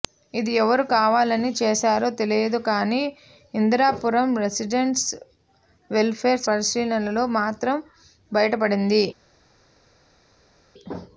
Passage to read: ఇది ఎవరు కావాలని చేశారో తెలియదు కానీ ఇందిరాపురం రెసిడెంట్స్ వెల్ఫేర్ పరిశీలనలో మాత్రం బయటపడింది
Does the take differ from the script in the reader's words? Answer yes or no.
no